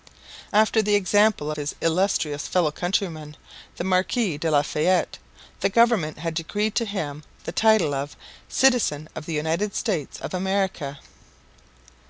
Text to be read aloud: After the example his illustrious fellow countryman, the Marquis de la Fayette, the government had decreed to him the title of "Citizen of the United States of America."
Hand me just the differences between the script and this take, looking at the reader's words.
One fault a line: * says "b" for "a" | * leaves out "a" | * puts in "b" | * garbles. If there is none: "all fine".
all fine